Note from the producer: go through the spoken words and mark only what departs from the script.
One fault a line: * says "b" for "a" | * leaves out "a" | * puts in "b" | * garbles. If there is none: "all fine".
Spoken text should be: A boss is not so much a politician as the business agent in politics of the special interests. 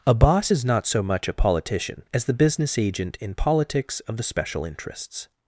all fine